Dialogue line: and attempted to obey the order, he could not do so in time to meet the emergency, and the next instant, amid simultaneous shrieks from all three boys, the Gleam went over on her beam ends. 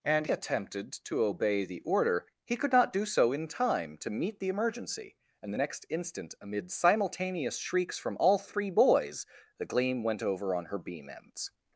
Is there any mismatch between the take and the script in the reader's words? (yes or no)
no